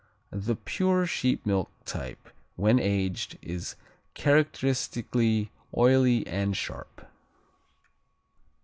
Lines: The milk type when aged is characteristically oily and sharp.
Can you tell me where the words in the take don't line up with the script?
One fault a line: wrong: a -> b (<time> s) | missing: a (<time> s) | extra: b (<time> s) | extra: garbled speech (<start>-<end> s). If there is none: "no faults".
extra: pure sheep (0.6 s)